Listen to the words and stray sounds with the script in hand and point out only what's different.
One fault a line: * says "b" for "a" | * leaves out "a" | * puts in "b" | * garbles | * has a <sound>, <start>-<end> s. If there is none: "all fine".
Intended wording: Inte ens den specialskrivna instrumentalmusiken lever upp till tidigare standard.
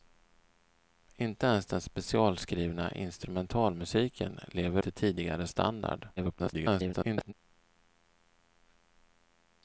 * leaves out "upp"
* garbles